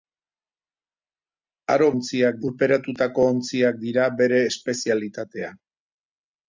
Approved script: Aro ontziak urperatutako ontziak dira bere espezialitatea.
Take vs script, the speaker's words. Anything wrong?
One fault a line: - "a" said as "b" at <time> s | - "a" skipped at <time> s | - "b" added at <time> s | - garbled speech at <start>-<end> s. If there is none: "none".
none